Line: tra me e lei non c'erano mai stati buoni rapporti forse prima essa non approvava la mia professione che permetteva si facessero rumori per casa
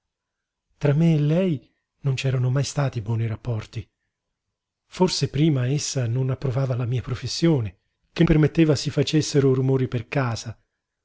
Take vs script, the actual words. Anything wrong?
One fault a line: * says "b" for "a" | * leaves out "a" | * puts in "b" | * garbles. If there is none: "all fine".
all fine